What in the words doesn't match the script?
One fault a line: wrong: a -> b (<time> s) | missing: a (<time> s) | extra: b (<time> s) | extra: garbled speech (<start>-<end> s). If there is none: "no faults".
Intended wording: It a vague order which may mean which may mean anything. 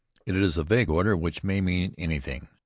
extra: is (0.3 s)
missing: which may mean (1.9 s)